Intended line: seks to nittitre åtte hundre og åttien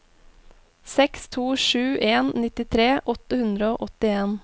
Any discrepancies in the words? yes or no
yes